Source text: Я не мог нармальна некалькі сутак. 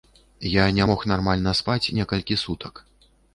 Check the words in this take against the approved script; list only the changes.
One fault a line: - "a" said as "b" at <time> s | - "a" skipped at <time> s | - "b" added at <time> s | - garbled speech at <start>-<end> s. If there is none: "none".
- "спаць" added at 1.6 s